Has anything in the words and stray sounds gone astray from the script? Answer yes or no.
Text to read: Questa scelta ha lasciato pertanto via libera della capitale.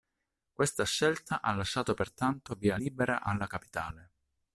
yes